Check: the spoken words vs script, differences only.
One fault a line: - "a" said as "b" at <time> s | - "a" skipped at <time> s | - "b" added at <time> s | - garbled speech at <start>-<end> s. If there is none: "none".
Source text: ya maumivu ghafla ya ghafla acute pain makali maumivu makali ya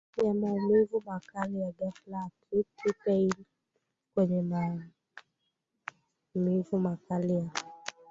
- "ghafla" said as "makali" at 1.1 s
- "makali" said as "kwenye" at 4.1 s